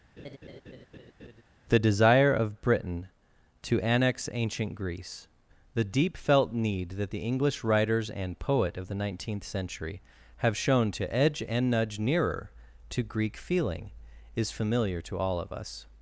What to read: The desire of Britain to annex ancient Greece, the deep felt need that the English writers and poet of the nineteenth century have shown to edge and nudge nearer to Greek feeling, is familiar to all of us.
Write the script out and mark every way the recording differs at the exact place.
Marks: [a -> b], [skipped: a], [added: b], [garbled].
The desire of Britain to annex ancient Greece, the deep felt need that the English writers and poet of the nineteenth century have shown to edge and nudge nearer to Greek feeling, is familiar to all of us.